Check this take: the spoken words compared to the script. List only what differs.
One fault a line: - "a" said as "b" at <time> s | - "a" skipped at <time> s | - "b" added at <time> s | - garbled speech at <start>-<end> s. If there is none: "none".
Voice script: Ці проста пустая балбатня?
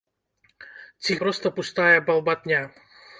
none